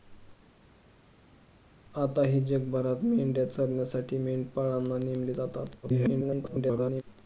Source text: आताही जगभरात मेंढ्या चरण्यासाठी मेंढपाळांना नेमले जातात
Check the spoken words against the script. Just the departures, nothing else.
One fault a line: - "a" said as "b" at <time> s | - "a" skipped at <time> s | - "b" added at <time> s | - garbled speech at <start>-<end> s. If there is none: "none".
- garbled speech at 5.8-7.0 s